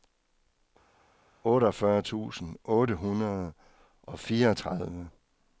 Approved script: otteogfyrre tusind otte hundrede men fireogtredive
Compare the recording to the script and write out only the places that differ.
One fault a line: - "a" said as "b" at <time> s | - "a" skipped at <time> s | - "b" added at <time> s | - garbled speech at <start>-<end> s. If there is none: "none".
- "men" said as "og" at 4.0 s